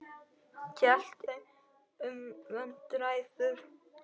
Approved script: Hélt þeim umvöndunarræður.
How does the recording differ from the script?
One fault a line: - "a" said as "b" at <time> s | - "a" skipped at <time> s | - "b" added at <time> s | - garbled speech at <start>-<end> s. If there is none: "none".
none